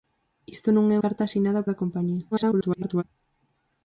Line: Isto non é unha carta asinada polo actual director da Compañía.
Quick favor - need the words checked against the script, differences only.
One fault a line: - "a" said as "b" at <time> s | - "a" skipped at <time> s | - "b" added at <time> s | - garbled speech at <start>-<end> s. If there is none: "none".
- "unha" skipped at 1.0 s
- "polo actual director" skipped at 1.7 s
- garbled speech at 2.3-3.0 s